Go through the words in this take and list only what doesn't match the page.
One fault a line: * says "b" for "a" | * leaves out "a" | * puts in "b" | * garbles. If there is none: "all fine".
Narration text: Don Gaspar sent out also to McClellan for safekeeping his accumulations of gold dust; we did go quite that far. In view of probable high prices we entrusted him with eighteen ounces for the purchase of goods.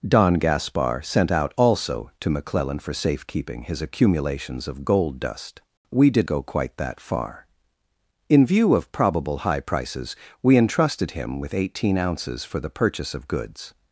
all fine